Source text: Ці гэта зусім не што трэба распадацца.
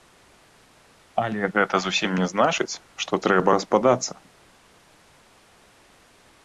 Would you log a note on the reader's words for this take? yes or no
yes